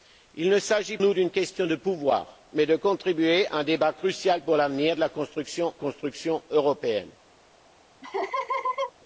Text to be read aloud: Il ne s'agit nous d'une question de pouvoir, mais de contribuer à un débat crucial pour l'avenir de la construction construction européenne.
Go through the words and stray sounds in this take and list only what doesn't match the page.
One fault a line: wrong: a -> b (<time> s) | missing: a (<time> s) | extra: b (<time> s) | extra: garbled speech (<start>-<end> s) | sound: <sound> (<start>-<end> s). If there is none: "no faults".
sound: laugh (8.0-8.9 s)